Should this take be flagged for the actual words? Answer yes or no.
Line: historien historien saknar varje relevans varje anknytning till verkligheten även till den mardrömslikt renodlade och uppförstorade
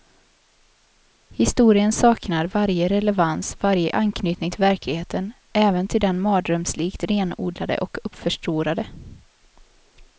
yes